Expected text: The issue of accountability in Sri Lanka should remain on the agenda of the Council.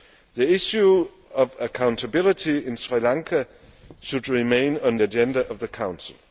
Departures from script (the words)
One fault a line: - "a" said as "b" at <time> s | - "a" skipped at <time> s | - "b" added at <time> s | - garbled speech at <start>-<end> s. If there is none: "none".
- "the" skipped at 5.0 s